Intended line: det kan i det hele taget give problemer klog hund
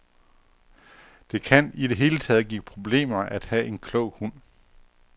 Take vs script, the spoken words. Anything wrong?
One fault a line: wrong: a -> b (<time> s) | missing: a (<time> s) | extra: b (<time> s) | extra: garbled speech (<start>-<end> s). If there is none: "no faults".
extra: at have en (3.2 s)